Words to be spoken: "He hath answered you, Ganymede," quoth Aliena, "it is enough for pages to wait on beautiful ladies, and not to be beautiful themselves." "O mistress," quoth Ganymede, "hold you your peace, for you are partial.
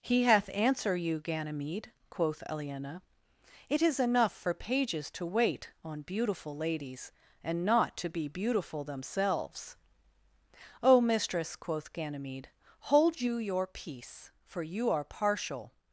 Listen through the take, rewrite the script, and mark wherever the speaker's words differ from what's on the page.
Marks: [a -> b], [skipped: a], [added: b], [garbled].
"He hath [answered -> answer] you, Ganymede," quoth Aliena, "it is enough for pages to wait on beautiful ladies, and not to be beautiful themselves." "O mistress," quoth Ganymede, "hold you your peace, for you are partial.